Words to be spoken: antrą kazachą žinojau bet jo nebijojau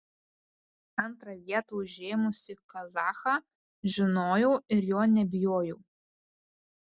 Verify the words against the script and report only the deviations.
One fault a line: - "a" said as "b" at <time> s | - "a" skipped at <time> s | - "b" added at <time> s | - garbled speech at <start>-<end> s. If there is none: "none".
- "vietą užėmusį" added at 1.5 s
- "bet" said as "ir" at 4.8 s